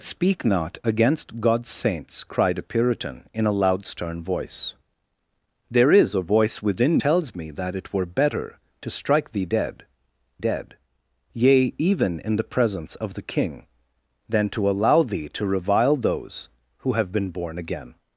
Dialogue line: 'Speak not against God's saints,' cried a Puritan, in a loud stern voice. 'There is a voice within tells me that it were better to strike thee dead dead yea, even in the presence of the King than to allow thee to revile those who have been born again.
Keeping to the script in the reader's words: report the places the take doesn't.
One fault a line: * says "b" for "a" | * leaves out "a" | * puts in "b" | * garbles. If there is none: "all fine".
all fine